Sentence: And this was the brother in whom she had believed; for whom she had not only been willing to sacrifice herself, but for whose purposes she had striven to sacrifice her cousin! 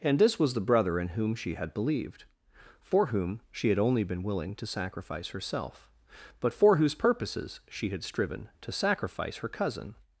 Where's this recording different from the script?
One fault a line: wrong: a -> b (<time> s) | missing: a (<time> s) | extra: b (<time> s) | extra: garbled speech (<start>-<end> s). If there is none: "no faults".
missing: not (3.8 s)